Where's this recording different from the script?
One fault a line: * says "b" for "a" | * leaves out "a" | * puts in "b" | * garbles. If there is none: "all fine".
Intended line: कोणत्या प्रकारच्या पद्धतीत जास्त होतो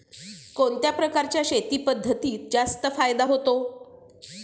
* puts in "शेती"
* puts in "फायदा"